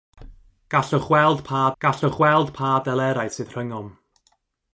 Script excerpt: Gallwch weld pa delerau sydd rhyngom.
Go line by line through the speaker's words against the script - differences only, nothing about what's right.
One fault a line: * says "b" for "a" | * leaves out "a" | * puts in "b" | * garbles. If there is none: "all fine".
* puts in "gallwch weld pa"